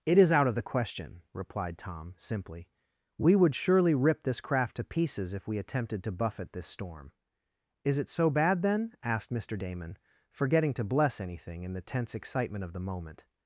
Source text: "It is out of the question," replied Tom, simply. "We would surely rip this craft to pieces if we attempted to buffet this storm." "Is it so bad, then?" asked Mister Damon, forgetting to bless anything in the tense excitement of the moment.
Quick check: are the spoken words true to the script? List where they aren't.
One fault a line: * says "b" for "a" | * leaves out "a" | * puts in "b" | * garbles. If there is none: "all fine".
all fine